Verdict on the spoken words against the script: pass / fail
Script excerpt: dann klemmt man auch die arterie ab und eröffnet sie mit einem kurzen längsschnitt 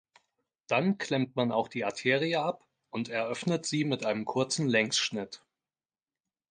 pass